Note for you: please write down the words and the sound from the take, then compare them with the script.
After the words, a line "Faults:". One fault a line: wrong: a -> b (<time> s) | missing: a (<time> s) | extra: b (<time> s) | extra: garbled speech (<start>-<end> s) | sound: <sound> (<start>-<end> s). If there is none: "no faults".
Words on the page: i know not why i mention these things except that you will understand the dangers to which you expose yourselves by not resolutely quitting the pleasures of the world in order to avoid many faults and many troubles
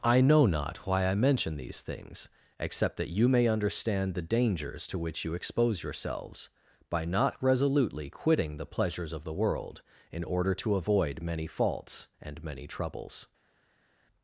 i know not why i mention these things except that you may understand the dangers to which you expose yourselves by not resolutely quitting the pleasures of the world in order to avoid many faults and many troubles
Faults:
wrong: will -> may (3.3 s)